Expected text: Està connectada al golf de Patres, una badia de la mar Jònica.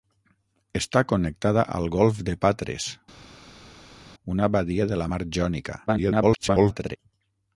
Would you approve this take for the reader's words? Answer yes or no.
no